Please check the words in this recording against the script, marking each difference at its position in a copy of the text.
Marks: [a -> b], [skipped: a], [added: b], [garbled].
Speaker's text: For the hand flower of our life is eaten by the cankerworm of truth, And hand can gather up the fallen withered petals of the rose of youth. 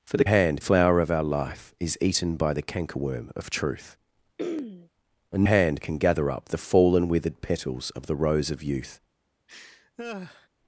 For the hand flower of our life is eaten by the cankerworm of truth, And hand can gather up the fallen withered petals of the rose of youth.